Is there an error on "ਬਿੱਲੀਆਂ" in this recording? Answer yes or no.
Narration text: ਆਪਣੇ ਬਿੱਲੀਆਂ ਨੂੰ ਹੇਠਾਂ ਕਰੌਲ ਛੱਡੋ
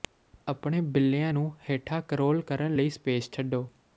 no